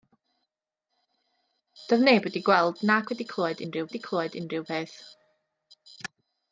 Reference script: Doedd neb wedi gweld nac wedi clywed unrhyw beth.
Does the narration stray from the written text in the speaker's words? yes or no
yes